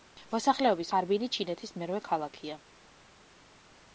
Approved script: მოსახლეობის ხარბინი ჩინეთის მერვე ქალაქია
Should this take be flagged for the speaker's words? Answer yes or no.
no